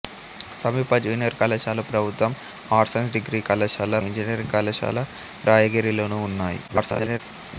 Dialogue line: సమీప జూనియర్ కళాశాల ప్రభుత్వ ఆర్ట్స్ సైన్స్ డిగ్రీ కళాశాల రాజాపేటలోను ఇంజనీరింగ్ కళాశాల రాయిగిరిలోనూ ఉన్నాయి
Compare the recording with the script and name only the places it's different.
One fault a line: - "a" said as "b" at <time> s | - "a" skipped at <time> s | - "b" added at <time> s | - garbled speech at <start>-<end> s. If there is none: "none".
- "రాజాపేటలోను" skipped at 4.0 s
- garbled speech at 6.7-7.2 s